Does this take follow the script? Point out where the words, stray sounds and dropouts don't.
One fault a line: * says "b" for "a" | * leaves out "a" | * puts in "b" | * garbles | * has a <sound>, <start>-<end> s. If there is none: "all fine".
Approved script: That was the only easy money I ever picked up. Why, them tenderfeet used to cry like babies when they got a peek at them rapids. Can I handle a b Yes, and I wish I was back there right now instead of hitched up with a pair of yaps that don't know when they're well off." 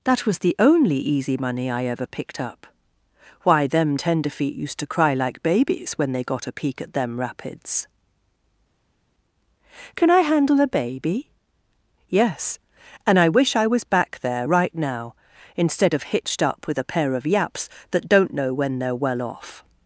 * says "baby" for "b"